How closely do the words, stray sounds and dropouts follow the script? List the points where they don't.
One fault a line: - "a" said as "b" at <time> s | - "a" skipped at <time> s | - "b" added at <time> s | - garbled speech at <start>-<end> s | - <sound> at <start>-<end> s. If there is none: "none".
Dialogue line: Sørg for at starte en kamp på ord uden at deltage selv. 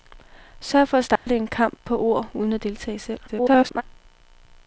- dropout at 1.2-1.3 s
- garbled speech at 3.3-3.8 s